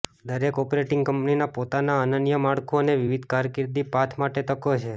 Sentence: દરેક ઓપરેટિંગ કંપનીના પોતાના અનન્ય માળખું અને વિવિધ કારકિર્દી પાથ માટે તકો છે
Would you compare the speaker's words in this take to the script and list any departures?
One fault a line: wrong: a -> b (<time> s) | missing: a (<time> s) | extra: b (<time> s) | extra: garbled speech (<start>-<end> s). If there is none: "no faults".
no faults